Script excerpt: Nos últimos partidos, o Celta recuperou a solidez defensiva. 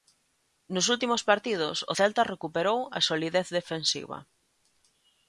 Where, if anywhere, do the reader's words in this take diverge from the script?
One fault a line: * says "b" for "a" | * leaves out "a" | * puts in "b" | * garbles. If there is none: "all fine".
all fine